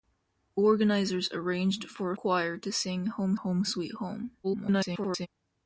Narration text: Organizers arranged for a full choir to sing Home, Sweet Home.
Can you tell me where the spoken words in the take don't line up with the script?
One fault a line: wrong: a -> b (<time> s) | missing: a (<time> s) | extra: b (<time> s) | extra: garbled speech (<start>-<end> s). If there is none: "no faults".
missing: full (2.2 s)
extra: Home (3.3 s)
extra: garbled speech (4.4-5.3 s)